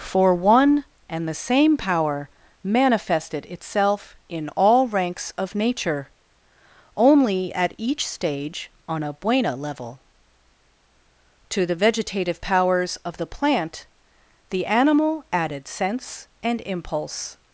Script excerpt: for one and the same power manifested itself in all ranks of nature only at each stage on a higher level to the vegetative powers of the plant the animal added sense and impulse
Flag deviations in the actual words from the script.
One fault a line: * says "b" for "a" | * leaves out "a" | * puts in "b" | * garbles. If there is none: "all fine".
* says "buena" for "higher"